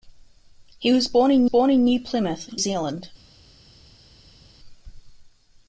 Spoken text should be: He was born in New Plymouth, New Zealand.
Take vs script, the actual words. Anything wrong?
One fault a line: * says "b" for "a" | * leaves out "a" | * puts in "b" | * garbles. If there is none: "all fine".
* puts in "born in"
* leaves out "New"